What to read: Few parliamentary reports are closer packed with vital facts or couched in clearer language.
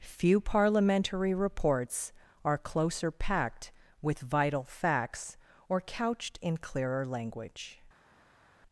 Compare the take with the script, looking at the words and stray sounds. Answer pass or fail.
pass